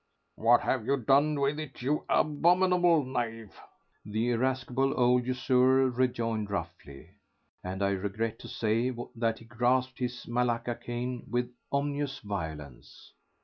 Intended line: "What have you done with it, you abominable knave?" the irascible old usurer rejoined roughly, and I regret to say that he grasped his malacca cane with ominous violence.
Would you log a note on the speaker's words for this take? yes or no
no